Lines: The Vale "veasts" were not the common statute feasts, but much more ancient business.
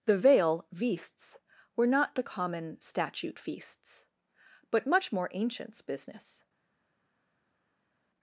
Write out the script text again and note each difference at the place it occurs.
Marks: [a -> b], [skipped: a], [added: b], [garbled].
The Vale "veasts" were not the common statute feasts, but much more [ancient -> ancients] business.